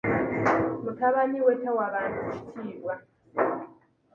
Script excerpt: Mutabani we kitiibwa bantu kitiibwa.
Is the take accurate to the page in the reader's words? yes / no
no